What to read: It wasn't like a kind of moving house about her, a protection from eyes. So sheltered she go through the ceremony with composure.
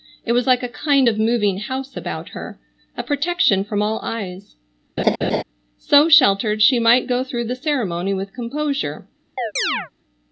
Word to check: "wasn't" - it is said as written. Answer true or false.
false